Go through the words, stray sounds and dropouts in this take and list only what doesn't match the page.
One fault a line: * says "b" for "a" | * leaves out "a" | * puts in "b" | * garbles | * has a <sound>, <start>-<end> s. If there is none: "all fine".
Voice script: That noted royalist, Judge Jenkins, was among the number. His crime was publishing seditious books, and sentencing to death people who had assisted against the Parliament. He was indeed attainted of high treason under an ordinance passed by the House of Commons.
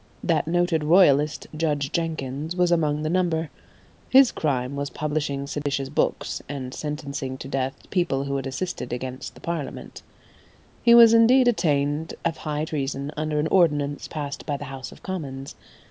* has a dropout, 5.6-5.7 s